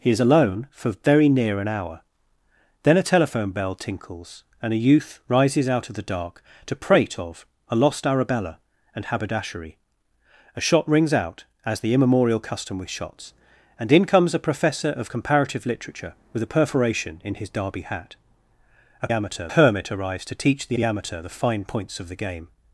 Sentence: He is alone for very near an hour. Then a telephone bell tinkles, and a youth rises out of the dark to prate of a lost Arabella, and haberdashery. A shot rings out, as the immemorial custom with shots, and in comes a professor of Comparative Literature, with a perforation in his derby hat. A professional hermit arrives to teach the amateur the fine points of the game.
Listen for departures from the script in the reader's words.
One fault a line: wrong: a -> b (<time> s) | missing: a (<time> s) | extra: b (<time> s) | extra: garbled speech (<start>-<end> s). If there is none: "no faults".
wrong: professional -> amateur (19.1 s)
extra: the (20.7 s)